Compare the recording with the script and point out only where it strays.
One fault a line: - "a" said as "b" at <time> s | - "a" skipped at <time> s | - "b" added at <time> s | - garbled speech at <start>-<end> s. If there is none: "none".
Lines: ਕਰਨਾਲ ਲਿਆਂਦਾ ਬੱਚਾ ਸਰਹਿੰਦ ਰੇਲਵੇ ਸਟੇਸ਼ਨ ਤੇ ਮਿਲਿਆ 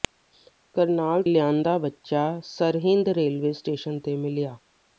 none